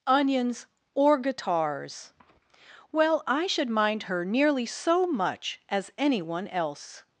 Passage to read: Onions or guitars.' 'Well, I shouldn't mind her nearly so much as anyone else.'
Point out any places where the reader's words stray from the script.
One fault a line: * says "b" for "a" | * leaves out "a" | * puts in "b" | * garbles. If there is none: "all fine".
* says "should" for "shouldn't"